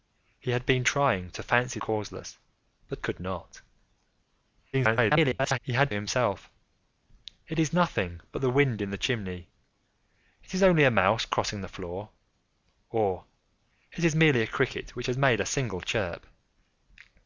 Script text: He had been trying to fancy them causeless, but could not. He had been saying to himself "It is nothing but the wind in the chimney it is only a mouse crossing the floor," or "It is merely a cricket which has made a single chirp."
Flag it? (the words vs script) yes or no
yes